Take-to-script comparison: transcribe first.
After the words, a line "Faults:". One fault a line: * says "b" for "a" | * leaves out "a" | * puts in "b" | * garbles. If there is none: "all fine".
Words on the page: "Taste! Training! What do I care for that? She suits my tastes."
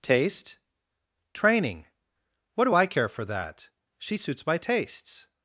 "Taste! Training! What do I care for that? She suits my tastes."
Faults:
all fine